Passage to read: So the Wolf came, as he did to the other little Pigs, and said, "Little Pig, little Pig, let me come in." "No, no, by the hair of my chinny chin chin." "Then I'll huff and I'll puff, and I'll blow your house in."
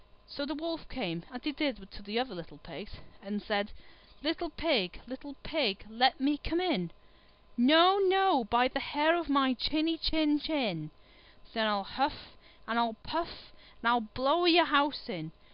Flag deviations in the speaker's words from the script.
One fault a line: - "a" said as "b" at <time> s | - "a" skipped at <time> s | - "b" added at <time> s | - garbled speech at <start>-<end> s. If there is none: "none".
none